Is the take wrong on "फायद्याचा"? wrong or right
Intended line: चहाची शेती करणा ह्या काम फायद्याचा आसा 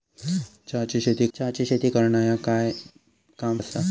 wrong